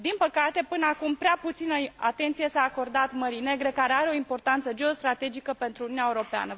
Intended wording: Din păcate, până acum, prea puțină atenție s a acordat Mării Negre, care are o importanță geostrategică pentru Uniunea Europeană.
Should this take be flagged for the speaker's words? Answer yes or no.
no